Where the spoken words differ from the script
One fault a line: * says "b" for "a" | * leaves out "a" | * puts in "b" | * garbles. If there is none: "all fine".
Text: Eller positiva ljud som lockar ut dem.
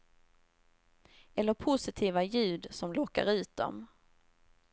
all fine